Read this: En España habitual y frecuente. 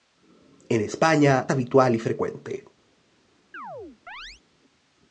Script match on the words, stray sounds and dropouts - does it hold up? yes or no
no